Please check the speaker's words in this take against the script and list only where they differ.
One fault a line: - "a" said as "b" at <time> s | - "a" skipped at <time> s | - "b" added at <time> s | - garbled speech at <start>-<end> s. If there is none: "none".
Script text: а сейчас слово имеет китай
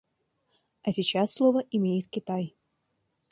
none